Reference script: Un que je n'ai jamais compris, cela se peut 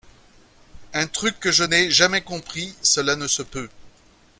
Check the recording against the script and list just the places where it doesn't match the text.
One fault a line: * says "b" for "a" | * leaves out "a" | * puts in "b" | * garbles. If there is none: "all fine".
* puts in "truc"
* puts in "ne"